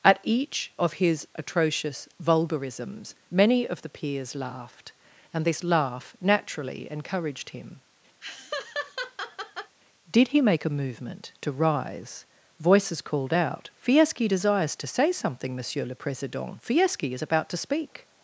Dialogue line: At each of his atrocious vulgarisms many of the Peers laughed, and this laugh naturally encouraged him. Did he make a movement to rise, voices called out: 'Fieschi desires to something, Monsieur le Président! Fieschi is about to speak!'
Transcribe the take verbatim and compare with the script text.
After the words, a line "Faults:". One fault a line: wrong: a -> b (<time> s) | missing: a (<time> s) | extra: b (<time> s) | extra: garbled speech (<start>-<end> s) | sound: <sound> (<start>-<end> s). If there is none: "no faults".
At each of his atrocious vulgarisms many of the Peers laughed, and this laugh naturally encouraged him. Did he make a movement to rise, voices called out: 'Fieschi desires to say something, Monsieur le Président! Fieschi is about to speak!'
Faults:
sound: laugh (8.2-9.8 s)
extra: say (14.9 s)